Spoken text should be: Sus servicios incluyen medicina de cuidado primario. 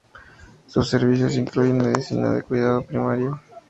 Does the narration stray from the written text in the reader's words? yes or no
no